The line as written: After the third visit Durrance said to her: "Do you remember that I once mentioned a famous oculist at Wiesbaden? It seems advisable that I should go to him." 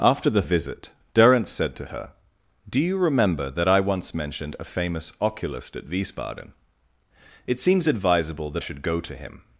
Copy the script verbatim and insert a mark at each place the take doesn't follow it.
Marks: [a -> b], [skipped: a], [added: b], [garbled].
After the [skipped: third] visit Durrance said to her: "Do you remember that I once mentioned a famous oculist at Wiesbaden? It seems advisable that [skipped: I] should go to him."